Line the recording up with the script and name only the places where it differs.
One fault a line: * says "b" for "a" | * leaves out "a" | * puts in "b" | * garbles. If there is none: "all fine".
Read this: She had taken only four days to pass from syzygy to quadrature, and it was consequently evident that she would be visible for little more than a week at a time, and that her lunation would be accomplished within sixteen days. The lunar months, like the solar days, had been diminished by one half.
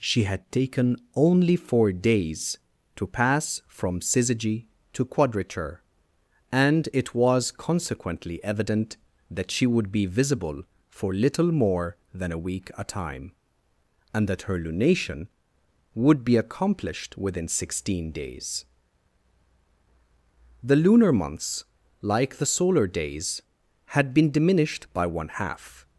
* leaves out "at"